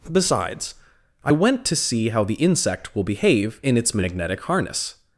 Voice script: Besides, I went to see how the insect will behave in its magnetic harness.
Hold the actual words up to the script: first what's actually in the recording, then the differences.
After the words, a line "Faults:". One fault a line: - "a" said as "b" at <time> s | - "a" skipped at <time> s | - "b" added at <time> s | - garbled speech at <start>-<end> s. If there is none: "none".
Besides, I went to see how the insect will behave in its magnetic harness.
Faults:
none